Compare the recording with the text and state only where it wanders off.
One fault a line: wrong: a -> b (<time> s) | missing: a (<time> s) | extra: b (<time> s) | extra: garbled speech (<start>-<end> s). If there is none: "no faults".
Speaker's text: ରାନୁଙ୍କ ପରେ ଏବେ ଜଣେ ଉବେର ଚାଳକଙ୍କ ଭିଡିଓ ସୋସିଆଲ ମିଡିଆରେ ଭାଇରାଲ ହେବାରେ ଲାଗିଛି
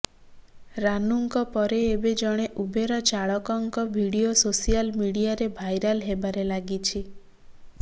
no faults